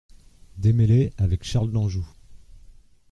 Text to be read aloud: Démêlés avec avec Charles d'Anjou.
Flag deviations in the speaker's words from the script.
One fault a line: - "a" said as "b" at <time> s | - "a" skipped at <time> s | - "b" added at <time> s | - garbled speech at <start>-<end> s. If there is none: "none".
- "avec" skipped at 1.4 s